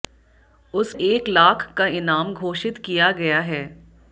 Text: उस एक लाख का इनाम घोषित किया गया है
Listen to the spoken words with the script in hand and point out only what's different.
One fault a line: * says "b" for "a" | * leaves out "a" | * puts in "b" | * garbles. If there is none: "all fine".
all fine